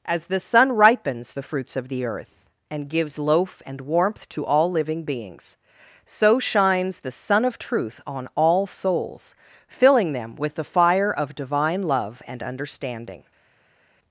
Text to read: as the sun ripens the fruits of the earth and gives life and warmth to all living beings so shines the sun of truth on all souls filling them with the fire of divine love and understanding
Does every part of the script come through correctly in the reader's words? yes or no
no